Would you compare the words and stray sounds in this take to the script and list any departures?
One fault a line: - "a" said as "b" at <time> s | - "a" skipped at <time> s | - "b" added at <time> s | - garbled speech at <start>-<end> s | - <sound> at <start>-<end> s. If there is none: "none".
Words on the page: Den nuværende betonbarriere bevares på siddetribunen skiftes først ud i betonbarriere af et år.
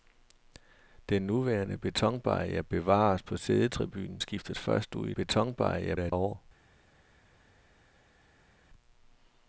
none